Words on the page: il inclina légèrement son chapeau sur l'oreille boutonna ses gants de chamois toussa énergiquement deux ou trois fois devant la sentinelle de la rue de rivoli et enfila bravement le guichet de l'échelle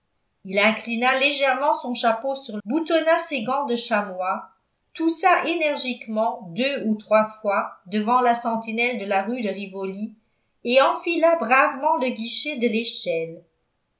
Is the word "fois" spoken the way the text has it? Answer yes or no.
yes